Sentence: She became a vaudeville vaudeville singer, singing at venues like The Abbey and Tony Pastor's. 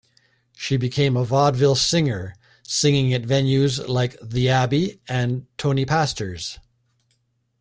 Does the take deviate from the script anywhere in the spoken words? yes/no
yes